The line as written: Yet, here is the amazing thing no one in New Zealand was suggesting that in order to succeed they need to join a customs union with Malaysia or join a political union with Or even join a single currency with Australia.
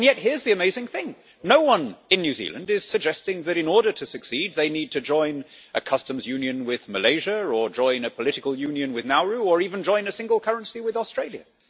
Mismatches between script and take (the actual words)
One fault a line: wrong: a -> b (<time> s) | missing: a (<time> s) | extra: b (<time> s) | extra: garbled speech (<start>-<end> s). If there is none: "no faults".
wrong: was -> is (2.7 s)
extra: Nauru (9.1 s)